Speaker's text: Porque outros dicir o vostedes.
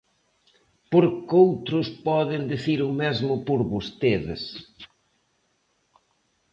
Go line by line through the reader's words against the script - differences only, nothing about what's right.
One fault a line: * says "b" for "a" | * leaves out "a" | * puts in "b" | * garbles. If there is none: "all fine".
* puts in "poden"
* puts in "mesmo por"